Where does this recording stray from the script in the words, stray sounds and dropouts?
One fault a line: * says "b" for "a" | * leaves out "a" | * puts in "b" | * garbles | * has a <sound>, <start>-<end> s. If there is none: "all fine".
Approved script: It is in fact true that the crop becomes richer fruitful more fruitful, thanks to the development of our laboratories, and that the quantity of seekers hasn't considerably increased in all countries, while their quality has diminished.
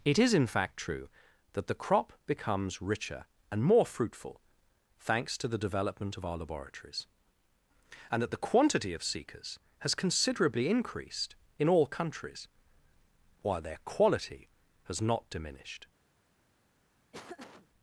* says "and" for "fruitful"
* says "has" for "hasn't"
* puts in "not"
* has a laugh, 17.1-17.7 s